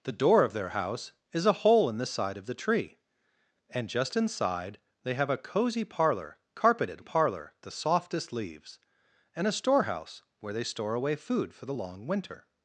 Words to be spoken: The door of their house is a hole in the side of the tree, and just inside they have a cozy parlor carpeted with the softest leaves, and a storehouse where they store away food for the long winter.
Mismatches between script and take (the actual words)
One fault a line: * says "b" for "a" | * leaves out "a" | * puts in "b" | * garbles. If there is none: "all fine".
* says "parlor" for "with"